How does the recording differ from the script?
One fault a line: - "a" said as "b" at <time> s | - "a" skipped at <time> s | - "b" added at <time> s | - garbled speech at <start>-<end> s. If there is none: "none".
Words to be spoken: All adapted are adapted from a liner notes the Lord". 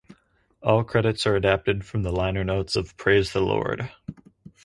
- "adapted" said as "credits" at 0.8 s
- "a" said as "the" at 2.0 s
- "of Praise" added at 2.7 s